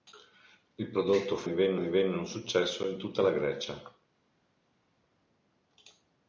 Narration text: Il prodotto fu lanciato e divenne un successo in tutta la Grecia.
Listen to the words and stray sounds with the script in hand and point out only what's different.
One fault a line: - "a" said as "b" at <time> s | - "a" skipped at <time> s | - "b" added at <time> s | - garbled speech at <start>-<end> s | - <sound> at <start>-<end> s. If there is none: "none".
- "lanciato" said as "divenne" at 1.4 s